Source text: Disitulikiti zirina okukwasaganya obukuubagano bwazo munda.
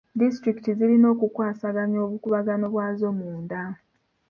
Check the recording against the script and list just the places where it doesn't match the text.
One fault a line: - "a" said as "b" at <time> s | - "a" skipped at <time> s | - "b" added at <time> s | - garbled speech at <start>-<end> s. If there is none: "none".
none